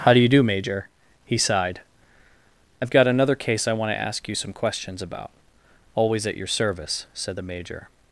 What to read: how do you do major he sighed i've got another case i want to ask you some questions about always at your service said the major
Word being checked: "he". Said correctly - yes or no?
yes